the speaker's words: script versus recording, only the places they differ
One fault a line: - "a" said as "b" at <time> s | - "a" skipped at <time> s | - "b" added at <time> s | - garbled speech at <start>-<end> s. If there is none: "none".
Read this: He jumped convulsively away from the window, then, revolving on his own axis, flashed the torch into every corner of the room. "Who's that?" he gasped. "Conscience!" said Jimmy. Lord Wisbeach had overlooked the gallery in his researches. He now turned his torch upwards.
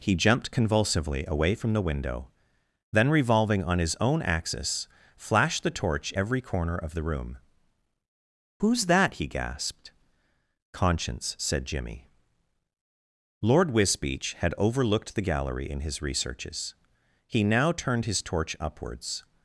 - "into" skipped at 6.1 s